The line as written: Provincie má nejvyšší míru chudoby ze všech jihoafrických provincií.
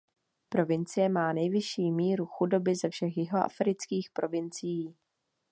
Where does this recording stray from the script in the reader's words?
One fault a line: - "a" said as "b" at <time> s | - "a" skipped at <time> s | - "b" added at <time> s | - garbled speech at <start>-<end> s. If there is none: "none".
none